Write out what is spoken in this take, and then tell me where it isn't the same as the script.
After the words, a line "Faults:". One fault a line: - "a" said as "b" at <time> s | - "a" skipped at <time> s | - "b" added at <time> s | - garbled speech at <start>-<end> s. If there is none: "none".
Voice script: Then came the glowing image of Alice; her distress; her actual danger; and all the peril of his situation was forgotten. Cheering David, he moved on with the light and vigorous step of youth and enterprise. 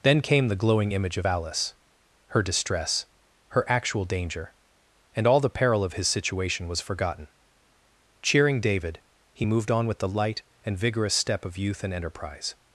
Then came the glowing image of Alice; her distress; her actual danger; and all the peril of his situation was forgotten. Cheering David, he moved on with the light and vigorous step of youth and enterprise.
Faults:
none